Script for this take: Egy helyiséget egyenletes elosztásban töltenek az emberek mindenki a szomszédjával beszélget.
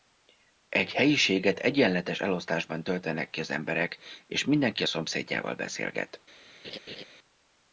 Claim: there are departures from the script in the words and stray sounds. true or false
true